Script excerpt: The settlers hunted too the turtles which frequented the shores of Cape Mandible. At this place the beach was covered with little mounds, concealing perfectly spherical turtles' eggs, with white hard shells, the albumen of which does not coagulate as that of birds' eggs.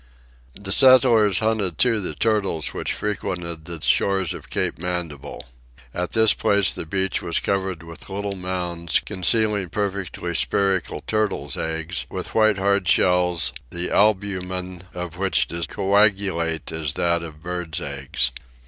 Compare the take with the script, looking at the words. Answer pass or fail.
fail